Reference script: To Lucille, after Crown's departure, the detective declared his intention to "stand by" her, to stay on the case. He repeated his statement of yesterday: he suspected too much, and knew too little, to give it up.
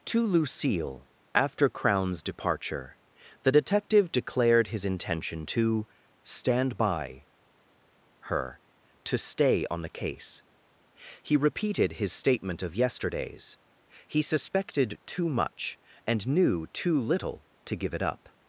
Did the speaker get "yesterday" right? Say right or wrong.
wrong